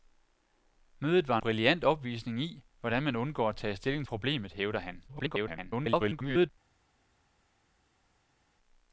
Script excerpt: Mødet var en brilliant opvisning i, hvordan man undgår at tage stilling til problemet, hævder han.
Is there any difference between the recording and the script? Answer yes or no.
yes